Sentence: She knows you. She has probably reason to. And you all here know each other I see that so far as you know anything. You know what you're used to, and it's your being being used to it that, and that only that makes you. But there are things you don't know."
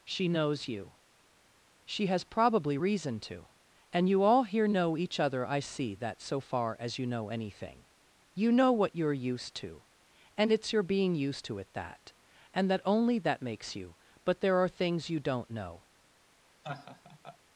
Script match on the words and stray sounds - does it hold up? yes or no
no